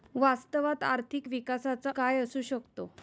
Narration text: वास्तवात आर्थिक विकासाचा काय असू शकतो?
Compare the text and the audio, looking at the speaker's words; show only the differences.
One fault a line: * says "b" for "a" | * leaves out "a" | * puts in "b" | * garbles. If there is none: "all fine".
all fine